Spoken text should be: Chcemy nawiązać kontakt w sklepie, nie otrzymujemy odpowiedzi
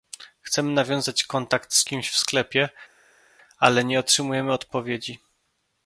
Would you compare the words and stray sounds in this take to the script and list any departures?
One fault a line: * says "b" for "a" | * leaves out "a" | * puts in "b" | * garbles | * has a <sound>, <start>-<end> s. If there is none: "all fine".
* puts in "z kimś"
* puts in "ale"